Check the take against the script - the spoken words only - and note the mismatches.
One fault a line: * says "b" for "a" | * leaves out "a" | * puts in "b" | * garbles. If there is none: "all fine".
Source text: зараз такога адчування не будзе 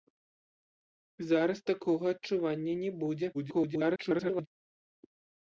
* garbles